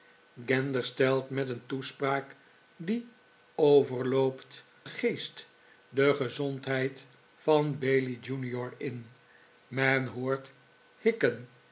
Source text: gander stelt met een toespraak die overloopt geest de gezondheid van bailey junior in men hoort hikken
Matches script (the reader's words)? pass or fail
pass